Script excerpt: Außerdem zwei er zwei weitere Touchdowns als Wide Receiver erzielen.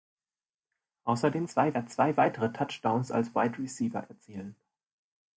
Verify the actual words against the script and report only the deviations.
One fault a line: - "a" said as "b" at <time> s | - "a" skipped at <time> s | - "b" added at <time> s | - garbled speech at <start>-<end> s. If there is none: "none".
none